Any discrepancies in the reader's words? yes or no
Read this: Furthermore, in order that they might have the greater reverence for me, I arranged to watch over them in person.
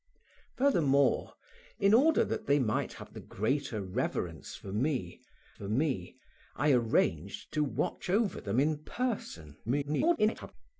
yes